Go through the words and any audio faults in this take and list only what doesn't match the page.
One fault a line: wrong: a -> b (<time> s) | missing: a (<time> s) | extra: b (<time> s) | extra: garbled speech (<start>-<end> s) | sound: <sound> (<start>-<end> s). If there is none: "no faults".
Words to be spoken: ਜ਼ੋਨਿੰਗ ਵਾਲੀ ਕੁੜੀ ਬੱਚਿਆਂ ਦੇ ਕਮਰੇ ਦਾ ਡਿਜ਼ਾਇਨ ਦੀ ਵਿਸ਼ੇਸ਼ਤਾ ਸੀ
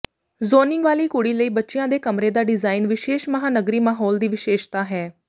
extra: ਲਈ (1.3 s)
extra: ਵਿਸ਼ੇਸ਼ ਮਹਾਂਨਗਰੀ ਮਾਹੌਲ (2.9 s)
wrong: ਸੀ -> ਹੈ (4.8 s)